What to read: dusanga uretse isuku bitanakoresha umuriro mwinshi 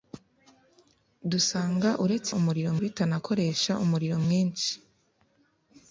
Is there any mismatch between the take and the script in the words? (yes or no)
yes